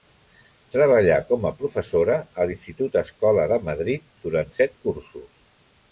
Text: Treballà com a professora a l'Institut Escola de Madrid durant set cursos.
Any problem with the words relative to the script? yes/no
no